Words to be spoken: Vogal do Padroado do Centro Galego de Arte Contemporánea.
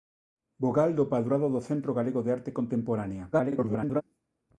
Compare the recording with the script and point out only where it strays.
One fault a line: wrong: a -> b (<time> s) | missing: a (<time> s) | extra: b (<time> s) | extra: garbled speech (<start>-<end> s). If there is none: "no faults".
extra: garbled speech (3.3-4.0 s)